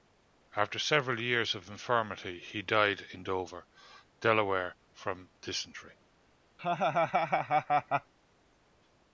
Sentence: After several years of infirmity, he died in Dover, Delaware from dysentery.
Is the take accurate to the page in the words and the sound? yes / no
no